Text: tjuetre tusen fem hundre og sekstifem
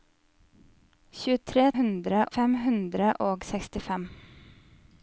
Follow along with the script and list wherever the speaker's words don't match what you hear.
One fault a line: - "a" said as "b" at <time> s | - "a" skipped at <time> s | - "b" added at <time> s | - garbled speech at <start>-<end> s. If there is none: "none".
- "tusen" said as "hundre" at 1.8 s